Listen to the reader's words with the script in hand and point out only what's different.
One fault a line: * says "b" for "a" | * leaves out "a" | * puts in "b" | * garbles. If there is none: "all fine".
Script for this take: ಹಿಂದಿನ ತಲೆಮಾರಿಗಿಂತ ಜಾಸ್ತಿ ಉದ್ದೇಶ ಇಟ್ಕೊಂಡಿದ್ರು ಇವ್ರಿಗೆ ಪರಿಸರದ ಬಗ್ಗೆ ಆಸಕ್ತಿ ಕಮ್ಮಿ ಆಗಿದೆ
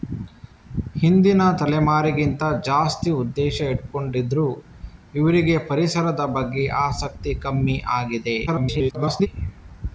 * garbles